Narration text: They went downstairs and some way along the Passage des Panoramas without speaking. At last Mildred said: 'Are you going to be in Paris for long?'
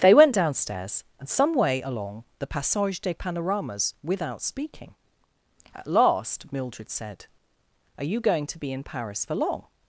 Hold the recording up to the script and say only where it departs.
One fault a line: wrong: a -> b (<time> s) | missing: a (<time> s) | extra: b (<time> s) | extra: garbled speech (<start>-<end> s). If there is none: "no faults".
no faults